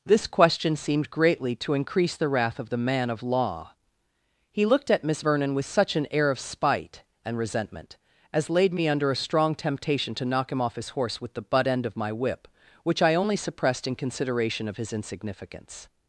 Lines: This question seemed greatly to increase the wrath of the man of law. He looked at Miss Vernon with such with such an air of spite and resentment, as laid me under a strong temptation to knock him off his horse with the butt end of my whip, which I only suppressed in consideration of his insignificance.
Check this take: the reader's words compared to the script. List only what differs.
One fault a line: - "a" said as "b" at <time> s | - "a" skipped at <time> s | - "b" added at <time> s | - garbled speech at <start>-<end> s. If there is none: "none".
- "with such" skipped at 5.9 s